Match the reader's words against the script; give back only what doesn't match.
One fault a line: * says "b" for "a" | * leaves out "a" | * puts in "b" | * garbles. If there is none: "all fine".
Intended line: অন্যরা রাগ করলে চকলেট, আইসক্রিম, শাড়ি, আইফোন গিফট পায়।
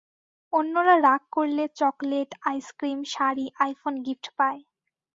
all fine